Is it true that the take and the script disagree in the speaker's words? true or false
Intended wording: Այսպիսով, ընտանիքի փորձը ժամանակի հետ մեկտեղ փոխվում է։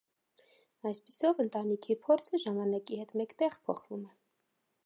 false